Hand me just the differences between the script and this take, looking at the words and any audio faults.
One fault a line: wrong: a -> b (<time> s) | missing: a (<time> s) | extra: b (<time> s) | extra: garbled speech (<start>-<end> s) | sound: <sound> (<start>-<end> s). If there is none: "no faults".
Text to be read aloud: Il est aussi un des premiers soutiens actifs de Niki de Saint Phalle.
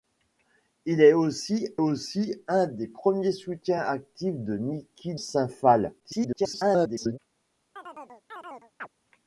extra: aussi (1.8 s)
missing: de (5.1 s)
extra: garbled speech (6.0-7.2 s)
sound: chirp (7.8-8.9 s)